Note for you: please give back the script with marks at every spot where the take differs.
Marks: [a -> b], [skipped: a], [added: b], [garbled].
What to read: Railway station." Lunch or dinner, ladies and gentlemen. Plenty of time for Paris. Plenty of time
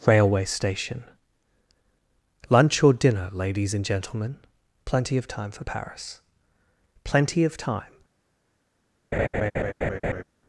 Railway station." Lunch or dinner, ladies and gentlemen. Plenty of time for Paris. Plenty of time